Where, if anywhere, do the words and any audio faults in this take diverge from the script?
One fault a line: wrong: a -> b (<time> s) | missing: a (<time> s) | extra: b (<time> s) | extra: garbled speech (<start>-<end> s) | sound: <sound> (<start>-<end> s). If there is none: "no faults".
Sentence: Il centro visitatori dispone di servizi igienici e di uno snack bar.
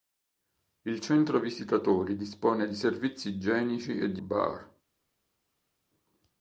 missing: uno snack (4.2 s)